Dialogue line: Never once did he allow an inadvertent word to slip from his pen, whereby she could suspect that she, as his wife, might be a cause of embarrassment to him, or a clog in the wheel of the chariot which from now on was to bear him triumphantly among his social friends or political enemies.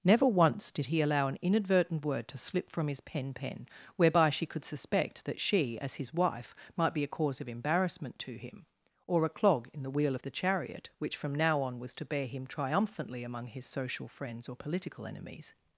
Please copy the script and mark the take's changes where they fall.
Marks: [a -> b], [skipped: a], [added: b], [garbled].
Never once did he allow an inadvertent word to slip from his pen, [added: pen] whereby she could suspect that she, as his wife, might be a cause of embarrassment to him, or a clog in the wheel of the chariot which from now on was to bear him triumphantly among his social friends or political enemies.